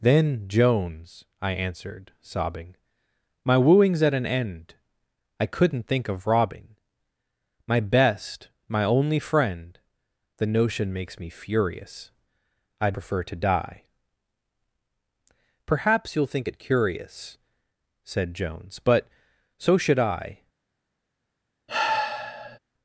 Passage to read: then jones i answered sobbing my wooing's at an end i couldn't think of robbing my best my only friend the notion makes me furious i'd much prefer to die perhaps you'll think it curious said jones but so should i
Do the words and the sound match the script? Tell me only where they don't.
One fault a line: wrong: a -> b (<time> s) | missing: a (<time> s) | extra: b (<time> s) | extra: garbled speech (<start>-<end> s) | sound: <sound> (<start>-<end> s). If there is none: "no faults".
missing: much (13.0 s)
sound: sigh (21.7-22.6 s)